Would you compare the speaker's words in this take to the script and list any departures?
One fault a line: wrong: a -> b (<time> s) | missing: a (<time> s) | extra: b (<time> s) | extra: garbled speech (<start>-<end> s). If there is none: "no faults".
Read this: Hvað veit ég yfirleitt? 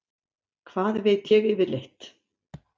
no faults